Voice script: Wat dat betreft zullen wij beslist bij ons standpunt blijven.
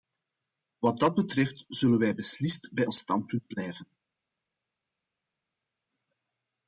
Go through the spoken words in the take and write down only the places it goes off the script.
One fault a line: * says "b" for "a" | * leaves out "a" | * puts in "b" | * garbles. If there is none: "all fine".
all fine